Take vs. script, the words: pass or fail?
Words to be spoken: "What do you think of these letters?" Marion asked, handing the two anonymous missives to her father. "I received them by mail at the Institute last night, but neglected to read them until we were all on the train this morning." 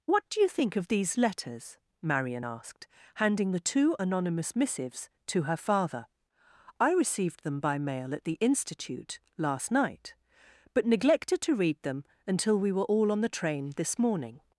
pass